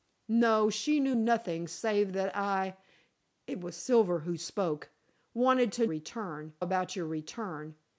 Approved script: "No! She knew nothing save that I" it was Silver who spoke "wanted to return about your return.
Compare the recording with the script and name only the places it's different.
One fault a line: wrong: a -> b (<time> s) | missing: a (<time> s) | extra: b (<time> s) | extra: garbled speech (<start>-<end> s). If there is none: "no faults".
no faults